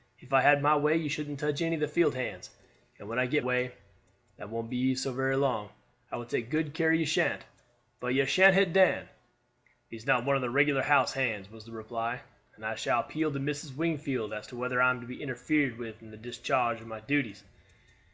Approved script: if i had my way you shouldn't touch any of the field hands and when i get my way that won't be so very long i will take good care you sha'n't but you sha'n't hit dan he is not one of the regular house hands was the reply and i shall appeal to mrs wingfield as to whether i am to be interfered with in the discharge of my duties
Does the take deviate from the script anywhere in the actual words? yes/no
yes